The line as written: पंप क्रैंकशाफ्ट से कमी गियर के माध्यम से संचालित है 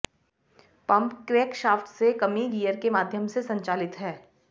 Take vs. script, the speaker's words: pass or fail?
pass